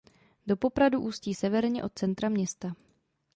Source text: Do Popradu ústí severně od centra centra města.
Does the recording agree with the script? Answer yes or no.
no